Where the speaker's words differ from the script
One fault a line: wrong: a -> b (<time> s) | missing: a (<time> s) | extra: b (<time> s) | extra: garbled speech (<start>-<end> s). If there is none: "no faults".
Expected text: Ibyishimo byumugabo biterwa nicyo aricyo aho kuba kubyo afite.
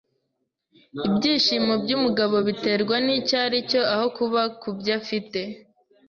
no faults